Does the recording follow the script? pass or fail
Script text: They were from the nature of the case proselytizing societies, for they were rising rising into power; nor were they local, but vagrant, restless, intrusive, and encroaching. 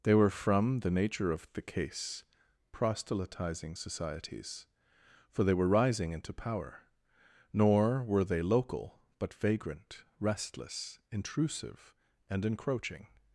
fail